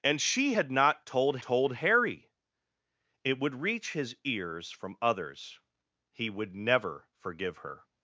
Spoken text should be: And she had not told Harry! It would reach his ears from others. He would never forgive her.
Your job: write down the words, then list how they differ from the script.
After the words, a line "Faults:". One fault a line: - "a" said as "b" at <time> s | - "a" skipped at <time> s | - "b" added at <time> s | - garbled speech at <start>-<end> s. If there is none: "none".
And she had not told told Harry! It would reach his ears from others. He would never forgive her.
Faults:
- "told" added at 1.4 s